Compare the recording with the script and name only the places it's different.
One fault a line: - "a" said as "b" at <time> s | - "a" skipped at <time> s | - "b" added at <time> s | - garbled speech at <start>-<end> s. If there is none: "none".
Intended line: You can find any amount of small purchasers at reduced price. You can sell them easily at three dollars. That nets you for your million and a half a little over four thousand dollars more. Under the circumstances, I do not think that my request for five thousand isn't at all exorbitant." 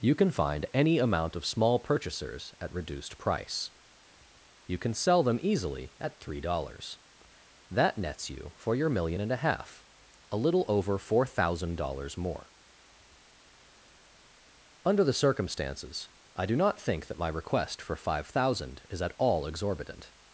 - "isn't" said as "is" at 18.9 s